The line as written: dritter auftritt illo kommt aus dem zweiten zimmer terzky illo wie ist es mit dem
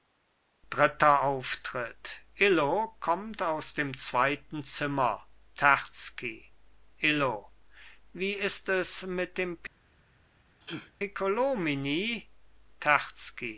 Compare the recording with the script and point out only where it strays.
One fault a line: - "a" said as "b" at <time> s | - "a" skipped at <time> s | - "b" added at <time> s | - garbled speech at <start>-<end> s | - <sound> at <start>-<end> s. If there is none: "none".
- sneeze at 10.6-10.9 s